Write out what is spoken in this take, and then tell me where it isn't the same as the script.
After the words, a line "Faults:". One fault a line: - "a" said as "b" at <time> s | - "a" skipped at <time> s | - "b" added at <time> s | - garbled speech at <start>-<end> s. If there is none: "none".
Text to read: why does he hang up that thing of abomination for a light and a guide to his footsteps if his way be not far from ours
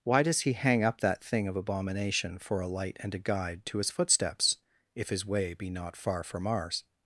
why does he hang up that thing of abomination for a light and a guide to his footsteps if his way be not far from ours
Faults:
none